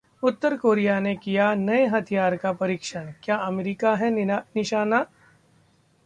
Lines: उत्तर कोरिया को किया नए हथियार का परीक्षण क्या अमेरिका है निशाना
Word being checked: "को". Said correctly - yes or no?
no